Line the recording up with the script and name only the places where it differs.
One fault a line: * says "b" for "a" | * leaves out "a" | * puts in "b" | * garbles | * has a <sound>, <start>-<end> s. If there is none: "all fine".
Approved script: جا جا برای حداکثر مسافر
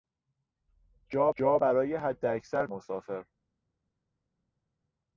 all fine